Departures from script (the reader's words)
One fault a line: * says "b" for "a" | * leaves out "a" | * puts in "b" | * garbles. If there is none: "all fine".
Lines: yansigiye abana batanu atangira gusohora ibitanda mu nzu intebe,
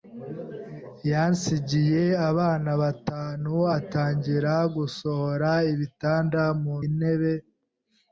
* leaves out "nzu"